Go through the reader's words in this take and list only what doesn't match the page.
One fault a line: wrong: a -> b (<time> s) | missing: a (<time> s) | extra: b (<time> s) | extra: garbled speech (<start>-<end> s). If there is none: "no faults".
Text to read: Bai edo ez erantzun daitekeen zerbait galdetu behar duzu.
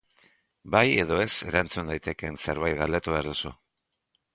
no faults